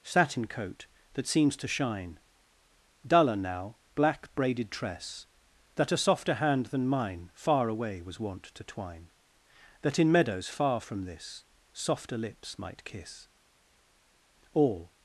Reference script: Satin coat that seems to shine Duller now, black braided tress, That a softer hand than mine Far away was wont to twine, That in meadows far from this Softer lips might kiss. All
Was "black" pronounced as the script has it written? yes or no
yes